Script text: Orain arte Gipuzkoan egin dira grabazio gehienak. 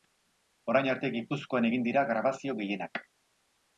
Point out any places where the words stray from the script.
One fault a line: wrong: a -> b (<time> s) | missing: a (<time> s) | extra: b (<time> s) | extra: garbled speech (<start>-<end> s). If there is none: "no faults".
no faults